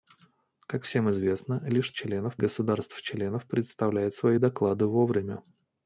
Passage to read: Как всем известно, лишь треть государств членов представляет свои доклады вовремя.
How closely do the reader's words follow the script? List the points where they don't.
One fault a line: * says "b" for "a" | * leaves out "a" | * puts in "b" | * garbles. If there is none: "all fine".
* says "членов" for "треть"